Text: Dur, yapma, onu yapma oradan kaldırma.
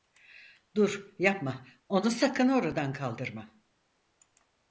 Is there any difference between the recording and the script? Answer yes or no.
yes